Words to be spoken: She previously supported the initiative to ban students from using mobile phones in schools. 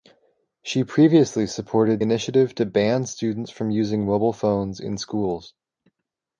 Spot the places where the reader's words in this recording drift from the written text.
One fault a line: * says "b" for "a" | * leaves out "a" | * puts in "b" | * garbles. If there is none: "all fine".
* leaves out "the"